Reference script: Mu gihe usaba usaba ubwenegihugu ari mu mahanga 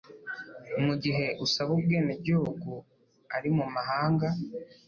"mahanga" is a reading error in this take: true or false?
false